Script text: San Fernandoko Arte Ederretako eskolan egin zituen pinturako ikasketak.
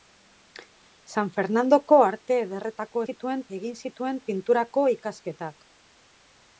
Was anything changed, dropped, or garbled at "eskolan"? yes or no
yes